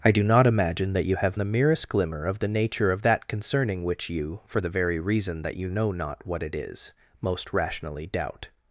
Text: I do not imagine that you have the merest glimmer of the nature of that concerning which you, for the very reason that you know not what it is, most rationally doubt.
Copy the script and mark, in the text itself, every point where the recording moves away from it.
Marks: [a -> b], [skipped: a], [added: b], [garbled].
I do not imagine that you have the merest glimmer of the nature of that concerning which you, for the very reason that you know not what it is, most rationally doubt.